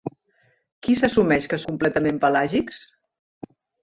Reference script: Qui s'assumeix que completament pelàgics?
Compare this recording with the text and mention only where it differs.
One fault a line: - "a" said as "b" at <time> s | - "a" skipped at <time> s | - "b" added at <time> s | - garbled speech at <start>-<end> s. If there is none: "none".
none